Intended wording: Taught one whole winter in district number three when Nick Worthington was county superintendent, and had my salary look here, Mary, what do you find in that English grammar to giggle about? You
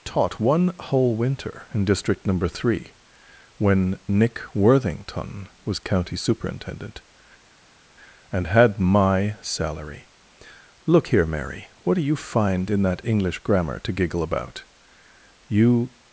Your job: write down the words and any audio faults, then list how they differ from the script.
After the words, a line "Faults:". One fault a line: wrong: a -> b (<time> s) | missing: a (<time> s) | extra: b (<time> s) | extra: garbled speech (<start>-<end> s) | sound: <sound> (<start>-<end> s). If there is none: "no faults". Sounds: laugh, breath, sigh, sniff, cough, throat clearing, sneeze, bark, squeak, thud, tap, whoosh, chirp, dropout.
Taught one whole winter in district number three when Nick Worthington was county superintendent, and had my salary look here, Mary, what do you find in that English grammar to giggle about? You
Faults:
no faults